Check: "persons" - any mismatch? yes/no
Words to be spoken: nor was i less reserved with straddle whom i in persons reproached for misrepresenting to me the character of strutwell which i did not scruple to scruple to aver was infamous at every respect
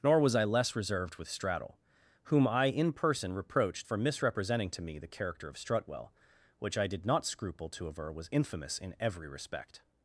yes